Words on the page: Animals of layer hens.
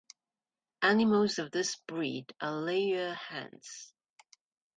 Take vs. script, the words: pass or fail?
fail